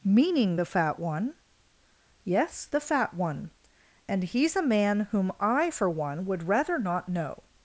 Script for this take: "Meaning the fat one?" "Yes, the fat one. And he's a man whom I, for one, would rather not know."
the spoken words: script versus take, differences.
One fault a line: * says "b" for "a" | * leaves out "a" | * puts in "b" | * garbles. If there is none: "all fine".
all fine